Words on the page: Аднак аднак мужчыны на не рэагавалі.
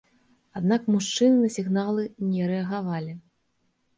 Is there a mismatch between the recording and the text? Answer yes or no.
yes